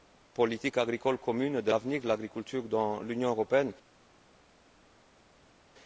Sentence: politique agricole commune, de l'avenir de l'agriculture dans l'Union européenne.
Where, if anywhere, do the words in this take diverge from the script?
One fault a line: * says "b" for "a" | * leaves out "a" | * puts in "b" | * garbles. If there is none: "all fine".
all fine